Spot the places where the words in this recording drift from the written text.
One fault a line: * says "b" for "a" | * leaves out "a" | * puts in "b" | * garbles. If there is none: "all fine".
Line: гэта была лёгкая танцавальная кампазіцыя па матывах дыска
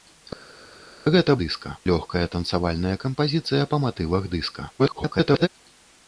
* says "дыска" for "была"
* garbles